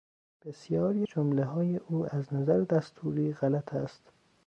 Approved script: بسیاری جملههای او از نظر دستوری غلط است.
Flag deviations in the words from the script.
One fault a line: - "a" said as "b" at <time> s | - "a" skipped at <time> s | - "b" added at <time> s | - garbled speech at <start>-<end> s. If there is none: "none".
none